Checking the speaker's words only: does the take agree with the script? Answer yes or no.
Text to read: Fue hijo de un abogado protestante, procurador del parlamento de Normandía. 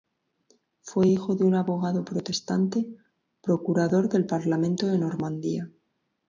yes